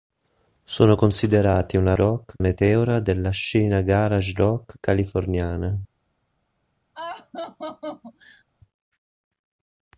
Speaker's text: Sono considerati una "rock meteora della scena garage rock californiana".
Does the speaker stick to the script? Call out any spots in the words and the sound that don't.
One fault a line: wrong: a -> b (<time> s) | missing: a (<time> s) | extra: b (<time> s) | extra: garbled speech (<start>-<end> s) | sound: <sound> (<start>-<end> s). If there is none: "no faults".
sound: laugh (7.0-8.4 s)